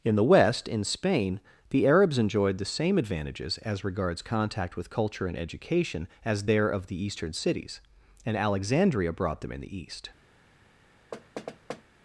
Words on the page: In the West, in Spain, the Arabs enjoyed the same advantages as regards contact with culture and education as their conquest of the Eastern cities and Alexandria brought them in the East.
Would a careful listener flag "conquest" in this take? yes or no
yes